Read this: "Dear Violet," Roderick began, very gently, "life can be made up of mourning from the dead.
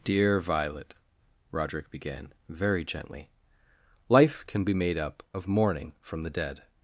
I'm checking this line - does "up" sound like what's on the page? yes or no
yes